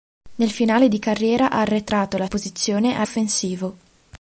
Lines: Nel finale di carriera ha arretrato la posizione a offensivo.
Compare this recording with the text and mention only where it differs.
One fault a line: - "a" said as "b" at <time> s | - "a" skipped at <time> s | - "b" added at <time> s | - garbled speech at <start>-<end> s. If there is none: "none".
none